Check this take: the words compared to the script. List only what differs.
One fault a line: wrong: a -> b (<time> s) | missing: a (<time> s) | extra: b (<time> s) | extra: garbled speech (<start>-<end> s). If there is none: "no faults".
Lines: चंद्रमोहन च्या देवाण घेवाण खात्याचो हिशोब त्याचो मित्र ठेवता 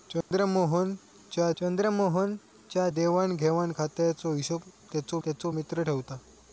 extra: चंद्रमोहन च्या (1.6 s)
extra: त्याचो (5.2 s)